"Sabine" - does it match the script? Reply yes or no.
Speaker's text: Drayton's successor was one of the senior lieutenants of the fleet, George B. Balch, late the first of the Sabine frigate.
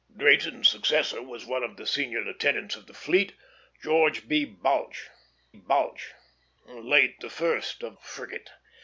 no